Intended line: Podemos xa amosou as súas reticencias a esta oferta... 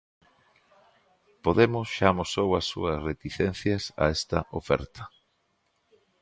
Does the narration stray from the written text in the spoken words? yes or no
no